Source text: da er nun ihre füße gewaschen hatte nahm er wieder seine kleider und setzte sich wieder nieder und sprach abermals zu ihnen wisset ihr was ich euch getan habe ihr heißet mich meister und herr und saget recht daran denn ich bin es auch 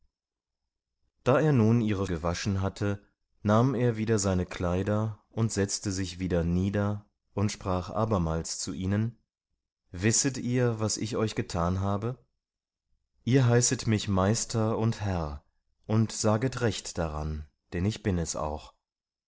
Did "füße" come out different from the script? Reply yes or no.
yes